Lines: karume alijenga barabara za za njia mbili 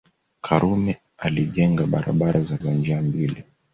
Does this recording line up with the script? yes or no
yes